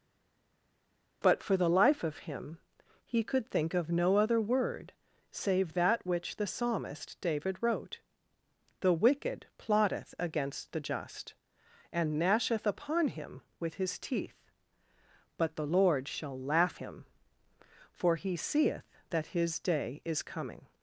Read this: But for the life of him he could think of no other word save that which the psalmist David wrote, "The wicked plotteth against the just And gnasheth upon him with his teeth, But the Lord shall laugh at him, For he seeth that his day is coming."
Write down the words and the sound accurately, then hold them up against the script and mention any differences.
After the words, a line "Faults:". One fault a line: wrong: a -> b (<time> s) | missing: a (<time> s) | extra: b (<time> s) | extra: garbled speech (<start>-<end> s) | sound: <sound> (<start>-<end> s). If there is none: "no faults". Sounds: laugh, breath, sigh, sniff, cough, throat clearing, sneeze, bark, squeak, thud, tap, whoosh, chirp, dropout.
But for the life of him he could think of no other word save that which the psalmist David wrote, "The wicked plotteth against the just And gnasheth upon him with his teeth, But the Lord shall laugh him, For he seeth that his day is coming."
Faults:
missing: at (16.8 s)